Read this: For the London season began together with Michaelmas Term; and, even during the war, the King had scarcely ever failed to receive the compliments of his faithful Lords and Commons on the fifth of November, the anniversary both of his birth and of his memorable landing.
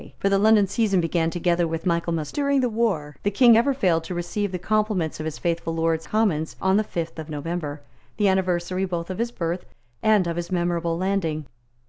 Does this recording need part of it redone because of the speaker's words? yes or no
yes